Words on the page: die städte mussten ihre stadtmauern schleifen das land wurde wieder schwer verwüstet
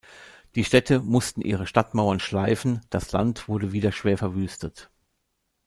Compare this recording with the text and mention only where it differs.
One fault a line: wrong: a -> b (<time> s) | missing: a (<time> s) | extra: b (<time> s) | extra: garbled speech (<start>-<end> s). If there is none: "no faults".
no faults